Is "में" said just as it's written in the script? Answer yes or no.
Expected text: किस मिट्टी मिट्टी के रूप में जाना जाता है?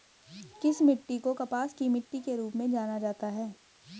yes